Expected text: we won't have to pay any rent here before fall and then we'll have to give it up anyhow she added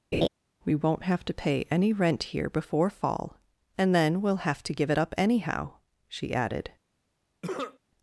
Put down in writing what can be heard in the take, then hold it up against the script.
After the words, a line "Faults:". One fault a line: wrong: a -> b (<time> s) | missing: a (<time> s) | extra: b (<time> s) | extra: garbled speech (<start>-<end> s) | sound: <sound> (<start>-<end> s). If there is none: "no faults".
we won't have to pay any rent here before fall and then we'll have to give it up anyhow she added
Faults:
sound: laugh (0.1-0.3 s)
sound: cough (7.4-7.8 s)